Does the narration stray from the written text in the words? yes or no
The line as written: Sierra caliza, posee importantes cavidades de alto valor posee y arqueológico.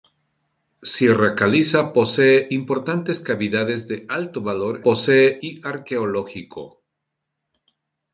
no